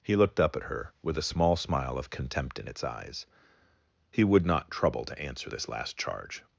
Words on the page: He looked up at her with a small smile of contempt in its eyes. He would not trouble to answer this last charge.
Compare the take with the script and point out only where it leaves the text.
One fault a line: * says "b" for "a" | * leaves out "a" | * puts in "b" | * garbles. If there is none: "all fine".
all fine